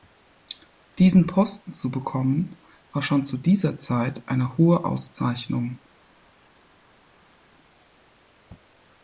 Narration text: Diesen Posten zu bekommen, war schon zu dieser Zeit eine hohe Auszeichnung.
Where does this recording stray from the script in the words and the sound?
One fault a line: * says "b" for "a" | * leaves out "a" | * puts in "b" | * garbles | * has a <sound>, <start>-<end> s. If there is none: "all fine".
all fine